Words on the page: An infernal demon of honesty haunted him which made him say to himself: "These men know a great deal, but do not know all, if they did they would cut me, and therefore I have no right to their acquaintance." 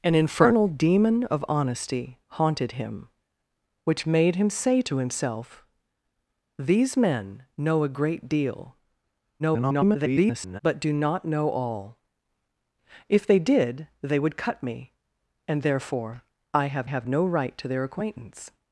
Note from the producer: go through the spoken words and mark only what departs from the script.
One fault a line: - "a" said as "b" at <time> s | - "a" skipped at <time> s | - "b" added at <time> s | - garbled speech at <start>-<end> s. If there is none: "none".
- garbled speech at 9.4-10.6 s
- "have" added at 16.8 s